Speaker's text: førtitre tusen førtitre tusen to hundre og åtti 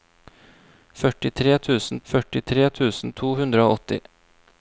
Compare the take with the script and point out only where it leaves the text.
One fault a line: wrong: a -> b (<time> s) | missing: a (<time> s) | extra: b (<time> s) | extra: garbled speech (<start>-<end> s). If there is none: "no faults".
no faults